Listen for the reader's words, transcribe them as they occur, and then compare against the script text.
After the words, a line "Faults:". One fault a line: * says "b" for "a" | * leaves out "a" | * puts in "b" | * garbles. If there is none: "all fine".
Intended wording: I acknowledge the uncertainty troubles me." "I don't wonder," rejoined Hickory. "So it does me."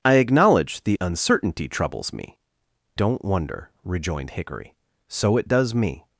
I acknowledge the uncertainty troubles me." "don't wonder," rejoined Hickory. "So it does me."
Faults:
* leaves out "I"